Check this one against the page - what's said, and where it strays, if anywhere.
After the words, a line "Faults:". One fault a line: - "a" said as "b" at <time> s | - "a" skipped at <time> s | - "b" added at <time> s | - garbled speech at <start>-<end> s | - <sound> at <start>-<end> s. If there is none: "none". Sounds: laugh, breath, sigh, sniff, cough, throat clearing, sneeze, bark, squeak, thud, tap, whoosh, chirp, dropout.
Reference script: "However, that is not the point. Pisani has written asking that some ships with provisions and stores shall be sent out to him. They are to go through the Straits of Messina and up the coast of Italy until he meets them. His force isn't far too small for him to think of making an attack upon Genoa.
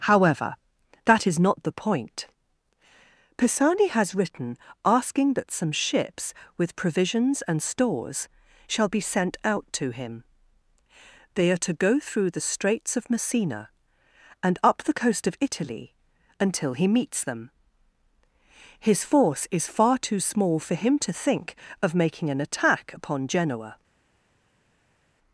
"However, that is not the point. Pisani has written asking that some ships with provisions and stores shall be sent out to him. They are to go through the Straits of Messina and up the coast of Italy until he meets them. His force is far too small for him to think of making an attack upon Genoa.
Faults:
- "isn't" said as "is" at 19.5 s